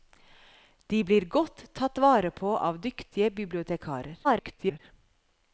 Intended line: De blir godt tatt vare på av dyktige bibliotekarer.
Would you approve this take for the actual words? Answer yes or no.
no